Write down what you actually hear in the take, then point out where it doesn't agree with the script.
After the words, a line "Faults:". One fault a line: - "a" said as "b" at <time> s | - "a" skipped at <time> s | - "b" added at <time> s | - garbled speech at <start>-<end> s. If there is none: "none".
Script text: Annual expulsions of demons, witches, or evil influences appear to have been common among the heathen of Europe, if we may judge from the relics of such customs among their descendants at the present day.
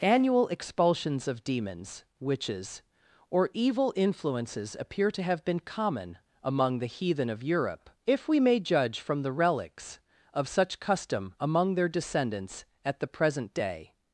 Annual expulsions of demons, witches, or evil influences appear to have been common among the heathen of Europe, if we may judge from the relics of such custom among their descendants at the present day.
Faults:
- "customs" said as "custom" at 10.8 s